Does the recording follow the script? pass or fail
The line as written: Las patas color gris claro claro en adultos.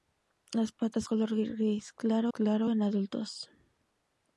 pass